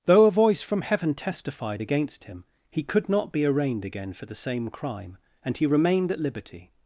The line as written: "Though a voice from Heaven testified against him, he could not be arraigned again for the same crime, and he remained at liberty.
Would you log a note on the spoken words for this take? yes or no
no